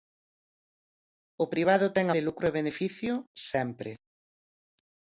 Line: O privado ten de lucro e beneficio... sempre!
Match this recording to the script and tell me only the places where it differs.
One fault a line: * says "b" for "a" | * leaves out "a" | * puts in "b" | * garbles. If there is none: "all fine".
all fine